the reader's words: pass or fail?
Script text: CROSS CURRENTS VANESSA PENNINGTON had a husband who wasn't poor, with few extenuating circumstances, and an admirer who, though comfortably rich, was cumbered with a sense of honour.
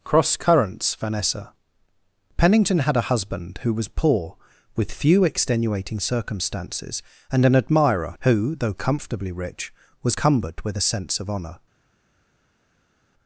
fail